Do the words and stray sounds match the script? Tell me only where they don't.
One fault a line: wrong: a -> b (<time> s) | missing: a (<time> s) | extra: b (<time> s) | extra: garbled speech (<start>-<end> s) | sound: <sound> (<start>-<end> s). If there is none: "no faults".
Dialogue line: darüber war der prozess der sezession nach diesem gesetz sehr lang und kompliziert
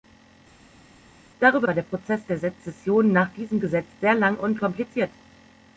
no faults